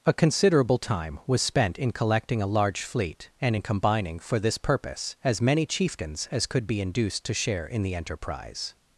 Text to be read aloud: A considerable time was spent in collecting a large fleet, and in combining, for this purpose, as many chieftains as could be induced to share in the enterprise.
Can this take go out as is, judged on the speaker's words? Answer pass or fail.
pass